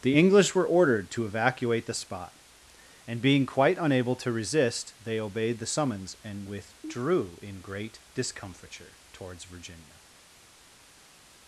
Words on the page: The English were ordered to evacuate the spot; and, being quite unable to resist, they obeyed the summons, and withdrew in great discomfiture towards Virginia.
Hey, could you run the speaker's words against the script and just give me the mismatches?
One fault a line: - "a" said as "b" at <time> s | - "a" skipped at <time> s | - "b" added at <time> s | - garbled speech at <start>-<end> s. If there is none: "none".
none